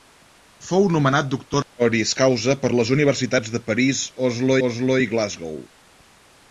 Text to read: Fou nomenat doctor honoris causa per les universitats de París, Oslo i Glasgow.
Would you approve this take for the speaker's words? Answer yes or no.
no